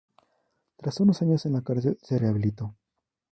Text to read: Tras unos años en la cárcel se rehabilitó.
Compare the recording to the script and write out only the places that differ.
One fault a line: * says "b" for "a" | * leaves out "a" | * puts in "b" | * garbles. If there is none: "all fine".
all fine